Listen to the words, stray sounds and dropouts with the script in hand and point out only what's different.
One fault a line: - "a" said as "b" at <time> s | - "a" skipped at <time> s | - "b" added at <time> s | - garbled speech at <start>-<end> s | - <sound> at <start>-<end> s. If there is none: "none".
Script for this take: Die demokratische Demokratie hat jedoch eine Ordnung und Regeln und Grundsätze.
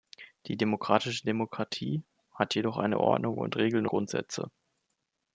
- "und" skipped at 3.9 s